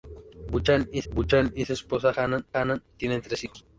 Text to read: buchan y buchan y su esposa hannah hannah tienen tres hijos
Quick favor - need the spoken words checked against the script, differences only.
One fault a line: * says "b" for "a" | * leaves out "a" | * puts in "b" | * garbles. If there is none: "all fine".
all fine